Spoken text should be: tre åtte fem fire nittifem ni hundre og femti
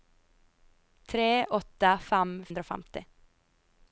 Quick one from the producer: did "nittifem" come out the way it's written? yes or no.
no